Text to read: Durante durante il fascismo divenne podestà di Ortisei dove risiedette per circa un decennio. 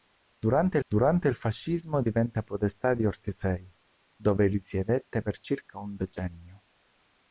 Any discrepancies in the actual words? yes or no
no